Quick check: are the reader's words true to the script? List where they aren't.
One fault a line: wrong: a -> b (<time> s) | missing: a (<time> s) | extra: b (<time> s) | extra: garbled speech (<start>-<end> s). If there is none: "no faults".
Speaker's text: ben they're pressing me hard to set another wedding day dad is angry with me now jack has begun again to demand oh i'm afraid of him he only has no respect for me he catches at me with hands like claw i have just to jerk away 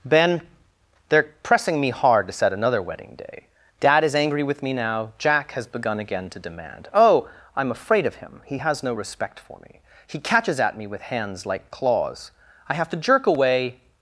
missing: only (8.6 s)
wrong: claw -> claws (11.7 s)
missing: just (12.9 s)